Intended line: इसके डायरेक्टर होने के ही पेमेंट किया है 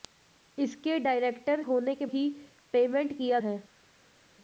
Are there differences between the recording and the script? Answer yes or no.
no